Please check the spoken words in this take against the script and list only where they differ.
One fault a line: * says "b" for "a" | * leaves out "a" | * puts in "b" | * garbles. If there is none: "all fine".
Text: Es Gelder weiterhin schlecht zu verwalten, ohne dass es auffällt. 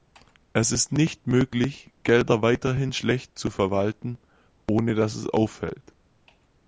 * puts in "ist nicht möglich"